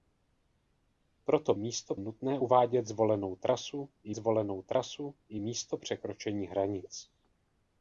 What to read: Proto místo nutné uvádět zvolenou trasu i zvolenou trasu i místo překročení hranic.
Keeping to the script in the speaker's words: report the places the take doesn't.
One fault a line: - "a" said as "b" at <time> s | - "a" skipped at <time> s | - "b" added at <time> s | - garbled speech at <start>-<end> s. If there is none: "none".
none